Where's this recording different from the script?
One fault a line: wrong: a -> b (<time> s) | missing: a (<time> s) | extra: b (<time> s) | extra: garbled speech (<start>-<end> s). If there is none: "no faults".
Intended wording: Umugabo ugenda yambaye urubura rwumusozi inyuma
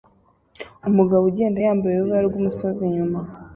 no faults